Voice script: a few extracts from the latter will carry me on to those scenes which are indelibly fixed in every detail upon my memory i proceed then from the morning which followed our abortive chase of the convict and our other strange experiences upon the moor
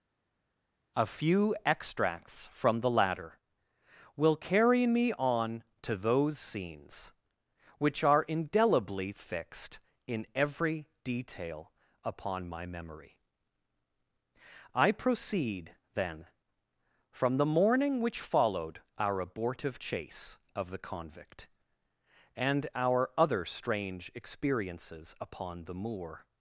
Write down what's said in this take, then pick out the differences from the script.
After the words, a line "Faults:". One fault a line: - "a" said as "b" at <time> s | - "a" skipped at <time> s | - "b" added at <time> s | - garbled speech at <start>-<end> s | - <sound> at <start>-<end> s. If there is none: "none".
a few extracts from the latter will carry me on to those scenes which are indelibly fixed in every detail upon my memory i proceed then from the morning which followed our abortive chase of the convict and our other strange experiences upon the moor
Faults:
none